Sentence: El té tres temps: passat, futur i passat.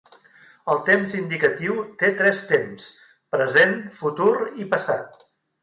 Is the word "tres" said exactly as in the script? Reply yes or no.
yes